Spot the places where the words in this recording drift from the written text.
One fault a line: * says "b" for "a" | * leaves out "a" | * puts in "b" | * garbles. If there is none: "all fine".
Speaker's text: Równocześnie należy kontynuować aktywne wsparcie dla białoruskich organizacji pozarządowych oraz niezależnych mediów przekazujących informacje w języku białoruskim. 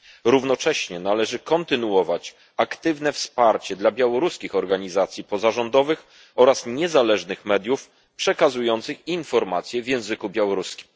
all fine